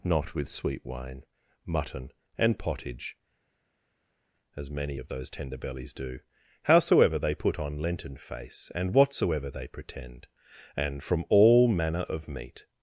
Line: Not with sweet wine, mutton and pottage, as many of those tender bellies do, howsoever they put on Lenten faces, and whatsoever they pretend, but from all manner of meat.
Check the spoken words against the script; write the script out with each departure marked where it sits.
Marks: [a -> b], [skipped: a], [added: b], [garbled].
Not with sweet wine, mutton and pottage, as many of those tender bellies do, howsoever they put on Lenten [faces, -> face] and whatsoever they pretend, [but -> and] from all manner of meat.